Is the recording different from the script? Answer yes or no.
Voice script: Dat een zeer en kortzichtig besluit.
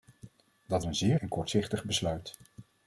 no